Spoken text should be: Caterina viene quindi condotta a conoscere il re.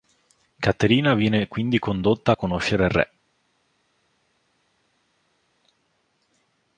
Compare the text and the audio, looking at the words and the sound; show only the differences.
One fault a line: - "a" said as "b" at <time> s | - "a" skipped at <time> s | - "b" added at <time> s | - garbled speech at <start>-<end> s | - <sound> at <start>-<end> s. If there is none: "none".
none